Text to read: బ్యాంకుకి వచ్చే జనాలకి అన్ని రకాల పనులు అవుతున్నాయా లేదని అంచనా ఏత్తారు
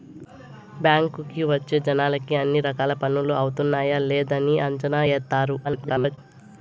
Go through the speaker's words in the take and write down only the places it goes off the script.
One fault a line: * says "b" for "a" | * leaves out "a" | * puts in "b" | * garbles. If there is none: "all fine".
* garbles